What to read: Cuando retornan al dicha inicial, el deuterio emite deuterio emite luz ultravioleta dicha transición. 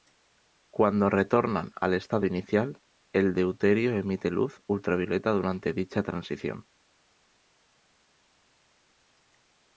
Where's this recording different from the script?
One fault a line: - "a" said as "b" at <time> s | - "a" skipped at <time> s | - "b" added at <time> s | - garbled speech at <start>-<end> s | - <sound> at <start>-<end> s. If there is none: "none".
- "dicha" said as "estado" at 1.9 s
- "deuterio emite" skipped at 4.3 s
- "durante" added at 5.3 s